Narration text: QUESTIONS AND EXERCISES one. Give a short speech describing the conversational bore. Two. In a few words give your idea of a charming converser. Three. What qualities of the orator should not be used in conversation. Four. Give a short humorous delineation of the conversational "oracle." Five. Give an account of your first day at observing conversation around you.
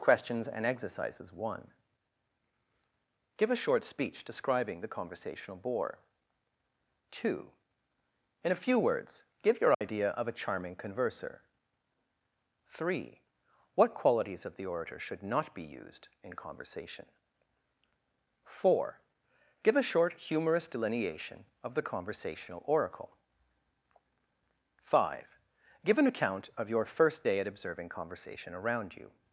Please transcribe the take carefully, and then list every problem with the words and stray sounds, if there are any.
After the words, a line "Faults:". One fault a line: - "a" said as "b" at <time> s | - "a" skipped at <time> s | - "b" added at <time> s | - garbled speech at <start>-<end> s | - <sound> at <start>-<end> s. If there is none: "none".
QUESTIONS AND EXERCISES one. Give a short speech describing the conversational bore. Two. In a few words give your idea of a charming converser. Three. What qualities of the orator should not be used in conversation. Four. Give a short humorous delineation of the conversational "oracle." Five. Give an account of your first day at observing conversation around you.
Faults:
- dropout at 9.7-9.8 s